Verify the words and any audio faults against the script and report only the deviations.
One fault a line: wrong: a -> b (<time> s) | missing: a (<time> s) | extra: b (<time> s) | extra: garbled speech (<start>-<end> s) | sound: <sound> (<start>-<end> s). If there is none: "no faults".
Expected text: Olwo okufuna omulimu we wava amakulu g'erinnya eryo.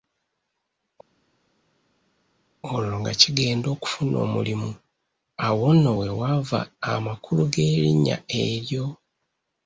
extra: nga kigenda (3.0 s)
extra: awo nno (5.5 s)